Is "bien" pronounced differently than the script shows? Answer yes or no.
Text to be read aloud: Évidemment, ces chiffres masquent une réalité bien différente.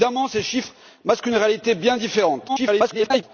no